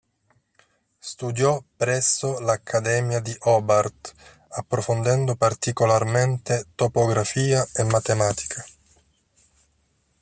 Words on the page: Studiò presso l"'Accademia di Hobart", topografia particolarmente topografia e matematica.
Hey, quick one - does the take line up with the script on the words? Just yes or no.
no